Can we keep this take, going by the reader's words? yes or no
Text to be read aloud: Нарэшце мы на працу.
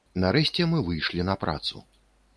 no